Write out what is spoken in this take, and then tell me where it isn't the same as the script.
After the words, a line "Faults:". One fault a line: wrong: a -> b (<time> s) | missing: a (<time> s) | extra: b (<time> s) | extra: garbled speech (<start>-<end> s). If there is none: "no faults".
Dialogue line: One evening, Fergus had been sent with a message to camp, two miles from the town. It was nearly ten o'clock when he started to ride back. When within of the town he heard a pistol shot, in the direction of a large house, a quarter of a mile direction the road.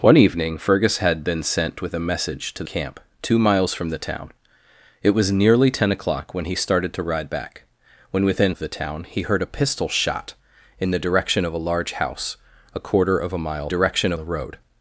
One evening, Fergus had been sent with a message to camp, two miles from the town. It was nearly ten o'clock when he started to ride back. When within of the town he heard a pistol shot, in the direction of a large house, a quarter of a mile direction the road.
Faults:
no faults